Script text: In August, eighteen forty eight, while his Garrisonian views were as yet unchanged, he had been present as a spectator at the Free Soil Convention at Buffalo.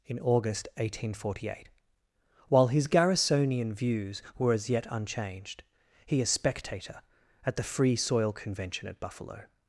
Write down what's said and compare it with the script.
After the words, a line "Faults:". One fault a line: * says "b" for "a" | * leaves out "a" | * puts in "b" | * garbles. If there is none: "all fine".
In August, eighteen forty eight, while his Garrisonian views were as yet unchanged, he a spectator at the Free Soil Convention at Buffalo.
Faults:
* leaves out "had been present as"